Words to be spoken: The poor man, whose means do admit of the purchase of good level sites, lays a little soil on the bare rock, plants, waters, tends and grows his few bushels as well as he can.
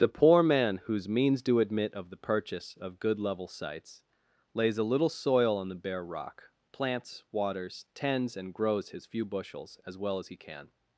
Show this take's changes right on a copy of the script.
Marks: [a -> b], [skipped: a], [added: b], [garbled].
The poor man, whose means do admit of the purchase of good level sites, lays a little soil on the bare rock, plants, waters, tends and grows his few bushels as well as he can.